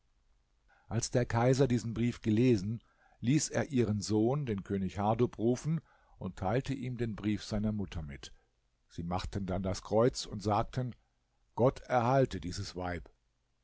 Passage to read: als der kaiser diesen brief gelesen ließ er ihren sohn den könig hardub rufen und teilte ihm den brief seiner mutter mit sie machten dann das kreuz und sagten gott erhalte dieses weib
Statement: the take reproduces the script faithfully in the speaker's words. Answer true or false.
true